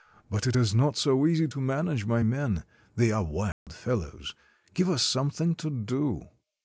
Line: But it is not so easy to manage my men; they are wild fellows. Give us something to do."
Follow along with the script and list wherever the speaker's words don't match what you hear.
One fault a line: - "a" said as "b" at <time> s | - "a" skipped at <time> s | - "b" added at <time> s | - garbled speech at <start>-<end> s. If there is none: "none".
none